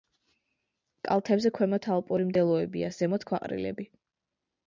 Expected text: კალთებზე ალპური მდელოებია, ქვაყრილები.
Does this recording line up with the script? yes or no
no